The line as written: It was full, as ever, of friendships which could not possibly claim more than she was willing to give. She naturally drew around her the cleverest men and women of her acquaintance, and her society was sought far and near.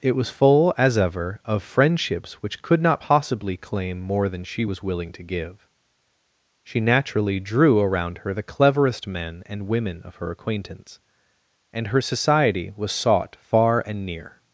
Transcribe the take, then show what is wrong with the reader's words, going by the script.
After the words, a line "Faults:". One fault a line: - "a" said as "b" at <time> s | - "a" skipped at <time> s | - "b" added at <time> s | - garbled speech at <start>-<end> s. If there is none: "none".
It was full, as ever, of friendships which could not possibly claim more than she was willing to give. She naturally drew around her the cleverest men and women of her acquaintance, and her society was sought far and near.
Faults:
none